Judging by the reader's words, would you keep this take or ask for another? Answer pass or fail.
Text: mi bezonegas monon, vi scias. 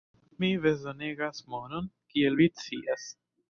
fail